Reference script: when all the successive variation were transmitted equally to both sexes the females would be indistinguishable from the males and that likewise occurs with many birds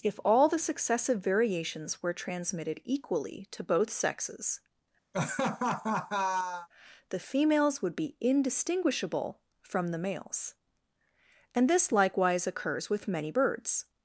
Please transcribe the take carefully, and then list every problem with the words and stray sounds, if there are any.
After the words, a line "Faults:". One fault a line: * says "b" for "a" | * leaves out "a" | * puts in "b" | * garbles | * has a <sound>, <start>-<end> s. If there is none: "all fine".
if all the successive variations were transmitted equally to both sexes the females would be indistinguishable from the males and this likewise occurs with many birds
Faults:
* says "if" for "when"
* says "variations" for "variation"
* has a laugh, 5.1-6.7 s
* says "this" for "that"